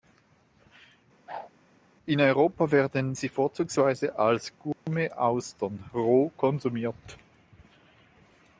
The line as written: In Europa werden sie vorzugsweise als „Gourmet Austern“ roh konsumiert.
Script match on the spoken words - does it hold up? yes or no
yes